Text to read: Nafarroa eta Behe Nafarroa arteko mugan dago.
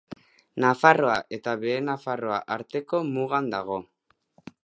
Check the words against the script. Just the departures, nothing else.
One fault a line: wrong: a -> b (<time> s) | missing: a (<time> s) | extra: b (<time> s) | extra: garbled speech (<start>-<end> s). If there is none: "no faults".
no faults